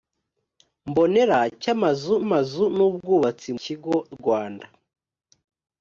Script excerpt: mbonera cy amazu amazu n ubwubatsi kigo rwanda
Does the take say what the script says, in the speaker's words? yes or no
yes